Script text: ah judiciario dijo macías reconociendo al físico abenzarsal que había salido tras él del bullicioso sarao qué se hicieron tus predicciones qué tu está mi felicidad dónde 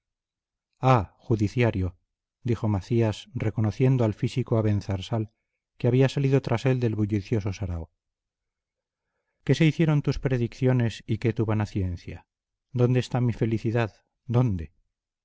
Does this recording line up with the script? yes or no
no